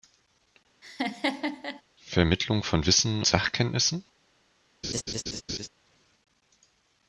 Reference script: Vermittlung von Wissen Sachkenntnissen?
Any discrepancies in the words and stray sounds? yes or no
yes